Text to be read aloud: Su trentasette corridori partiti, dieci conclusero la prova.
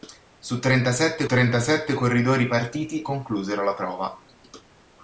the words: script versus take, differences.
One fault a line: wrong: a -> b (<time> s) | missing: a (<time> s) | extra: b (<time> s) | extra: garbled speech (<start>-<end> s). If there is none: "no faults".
extra: trentasette (1.2 s)
missing: dieci (3.1 s)